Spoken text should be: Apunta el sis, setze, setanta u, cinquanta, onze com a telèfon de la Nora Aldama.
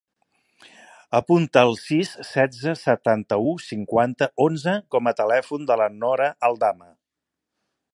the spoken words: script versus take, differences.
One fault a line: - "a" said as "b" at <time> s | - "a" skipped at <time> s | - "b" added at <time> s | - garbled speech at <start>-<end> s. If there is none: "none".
none